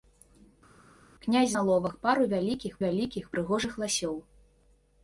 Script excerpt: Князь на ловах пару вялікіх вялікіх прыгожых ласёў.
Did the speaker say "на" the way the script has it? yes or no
yes